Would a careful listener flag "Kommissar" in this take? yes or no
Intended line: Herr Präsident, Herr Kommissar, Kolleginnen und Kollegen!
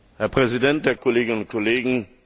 yes